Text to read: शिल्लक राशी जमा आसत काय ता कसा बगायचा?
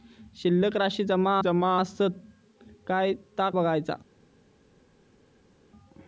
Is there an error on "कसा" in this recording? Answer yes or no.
yes